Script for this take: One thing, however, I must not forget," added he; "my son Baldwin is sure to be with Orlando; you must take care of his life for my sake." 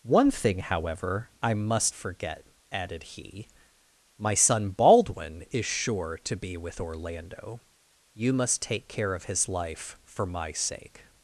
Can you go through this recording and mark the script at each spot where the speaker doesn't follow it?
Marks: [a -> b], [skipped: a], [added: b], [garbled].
One thing, however, I must [skipped: not] forget," added he; "my son Baldwin is sure to be with Orlando; you must take care of his life for my sake."